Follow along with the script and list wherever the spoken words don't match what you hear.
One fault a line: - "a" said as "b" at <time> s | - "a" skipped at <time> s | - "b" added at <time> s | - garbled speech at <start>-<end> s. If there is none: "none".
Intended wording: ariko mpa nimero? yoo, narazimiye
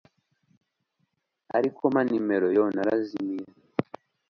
none